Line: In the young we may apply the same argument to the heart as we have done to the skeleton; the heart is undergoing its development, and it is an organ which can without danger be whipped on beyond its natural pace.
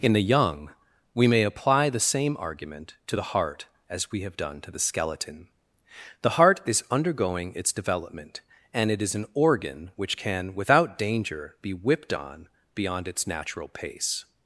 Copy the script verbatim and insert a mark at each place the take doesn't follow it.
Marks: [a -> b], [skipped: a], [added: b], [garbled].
In the young we may apply the same argument to the heart as we have done to the skeleton; the heart is undergoing its development, and it is an organ which can without danger be whipped on beyond its natural pace.